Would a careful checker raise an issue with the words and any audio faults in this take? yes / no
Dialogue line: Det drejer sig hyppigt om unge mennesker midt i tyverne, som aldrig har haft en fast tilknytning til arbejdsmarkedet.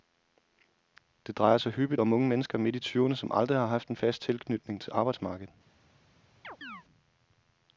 yes